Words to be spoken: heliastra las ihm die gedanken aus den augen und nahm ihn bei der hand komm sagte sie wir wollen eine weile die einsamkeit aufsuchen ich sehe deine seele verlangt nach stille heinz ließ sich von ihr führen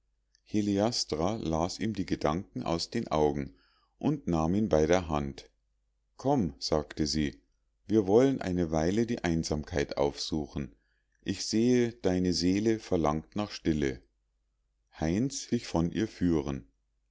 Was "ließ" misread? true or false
true